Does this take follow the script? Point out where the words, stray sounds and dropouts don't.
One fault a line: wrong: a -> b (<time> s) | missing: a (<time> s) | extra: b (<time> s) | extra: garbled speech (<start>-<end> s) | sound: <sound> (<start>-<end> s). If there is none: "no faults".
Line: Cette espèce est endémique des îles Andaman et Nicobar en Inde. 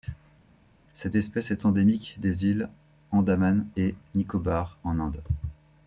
no faults